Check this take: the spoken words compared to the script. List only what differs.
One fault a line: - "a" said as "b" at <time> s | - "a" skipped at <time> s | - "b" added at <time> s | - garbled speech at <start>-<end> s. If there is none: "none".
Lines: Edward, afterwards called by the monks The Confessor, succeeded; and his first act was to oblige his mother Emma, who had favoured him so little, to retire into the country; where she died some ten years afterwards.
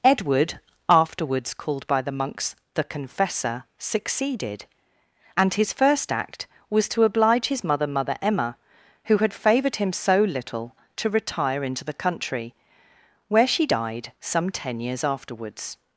- "mother" added at 7.9 s